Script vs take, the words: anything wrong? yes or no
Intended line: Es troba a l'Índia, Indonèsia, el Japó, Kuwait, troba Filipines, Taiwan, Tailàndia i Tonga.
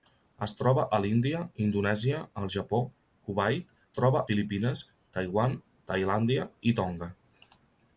no